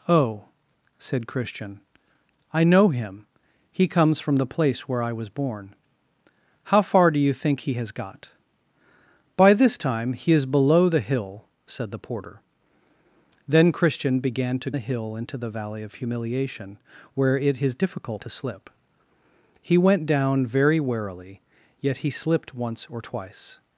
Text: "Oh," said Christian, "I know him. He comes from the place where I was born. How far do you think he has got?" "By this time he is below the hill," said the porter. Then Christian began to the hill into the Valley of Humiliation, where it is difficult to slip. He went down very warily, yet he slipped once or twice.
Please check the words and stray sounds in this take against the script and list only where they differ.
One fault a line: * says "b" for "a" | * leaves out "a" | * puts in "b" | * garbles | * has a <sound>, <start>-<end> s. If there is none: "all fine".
all fine